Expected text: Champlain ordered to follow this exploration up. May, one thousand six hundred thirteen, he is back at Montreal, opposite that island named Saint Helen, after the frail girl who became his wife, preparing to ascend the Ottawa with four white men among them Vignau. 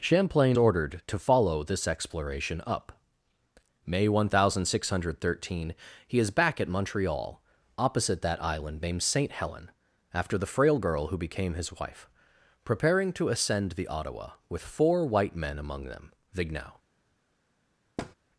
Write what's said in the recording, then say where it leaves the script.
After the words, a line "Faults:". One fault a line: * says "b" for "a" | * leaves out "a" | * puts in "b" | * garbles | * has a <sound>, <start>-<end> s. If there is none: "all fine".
Champlain ordered to follow this exploration up. May, one thousand six hundred thirteen, he is back at Montreal, opposite that island named Saint Helen, after the frail girl who became his wife, preparing to ascend the Ottawa with four white men among them Vignau.
Faults:
* has a thud, 18.0-18.2 s